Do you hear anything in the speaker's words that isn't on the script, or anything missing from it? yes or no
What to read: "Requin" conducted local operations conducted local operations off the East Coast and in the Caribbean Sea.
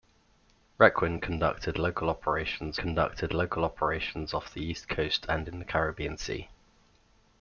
no